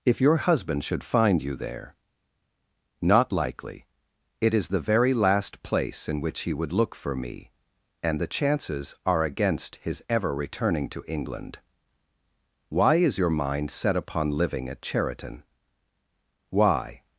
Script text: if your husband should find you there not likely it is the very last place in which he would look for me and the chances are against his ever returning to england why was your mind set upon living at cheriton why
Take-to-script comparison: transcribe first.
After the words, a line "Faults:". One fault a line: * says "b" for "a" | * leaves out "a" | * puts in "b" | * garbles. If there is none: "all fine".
if your husband should find you there not likely it is the very last place in which he would look for me and the chances are against his ever returning to england why is your mind set upon living at cheriton why
Faults:
* says "is" for "was"